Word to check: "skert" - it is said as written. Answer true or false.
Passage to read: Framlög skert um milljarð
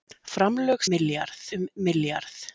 false